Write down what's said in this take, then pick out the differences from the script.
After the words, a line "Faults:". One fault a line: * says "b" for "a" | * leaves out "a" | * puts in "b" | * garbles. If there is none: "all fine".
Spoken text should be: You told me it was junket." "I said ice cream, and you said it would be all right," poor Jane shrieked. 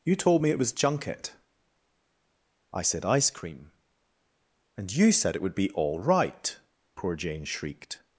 You told me it was junket." "I said ice cream, and you said it would be all right," poor Jane shrieked.
Faults:
all fine